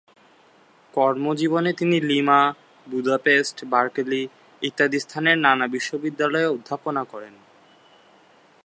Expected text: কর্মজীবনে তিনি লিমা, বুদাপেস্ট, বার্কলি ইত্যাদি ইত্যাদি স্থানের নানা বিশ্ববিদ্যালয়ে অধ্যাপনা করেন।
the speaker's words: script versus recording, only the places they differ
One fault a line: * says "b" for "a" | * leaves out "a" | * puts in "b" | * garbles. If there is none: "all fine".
* leaves out "ইত্যাদি"